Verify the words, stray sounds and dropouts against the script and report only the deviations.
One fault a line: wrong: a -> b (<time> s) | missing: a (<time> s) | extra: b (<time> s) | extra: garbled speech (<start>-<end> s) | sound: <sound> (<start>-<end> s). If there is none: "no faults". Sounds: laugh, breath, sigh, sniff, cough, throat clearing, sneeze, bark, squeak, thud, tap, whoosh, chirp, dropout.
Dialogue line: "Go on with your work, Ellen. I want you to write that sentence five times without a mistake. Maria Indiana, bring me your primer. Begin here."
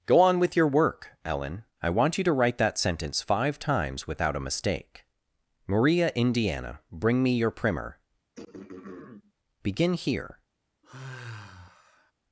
sound: throat clearing (8.3-9.3 s)
sound: sigh (10.8-12.1 s)